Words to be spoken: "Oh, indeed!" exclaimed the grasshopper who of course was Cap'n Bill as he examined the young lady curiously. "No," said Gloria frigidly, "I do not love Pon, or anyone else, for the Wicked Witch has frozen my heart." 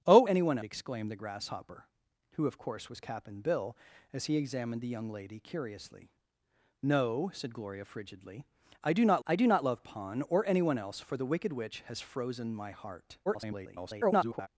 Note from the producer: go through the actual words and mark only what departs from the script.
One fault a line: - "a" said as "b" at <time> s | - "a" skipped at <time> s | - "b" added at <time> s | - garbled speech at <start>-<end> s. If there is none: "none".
- "indeed" said as "anyone" at 0.3 s
- "I do not" added at 9.2 s
- garbled speech at 13.3-14.5 s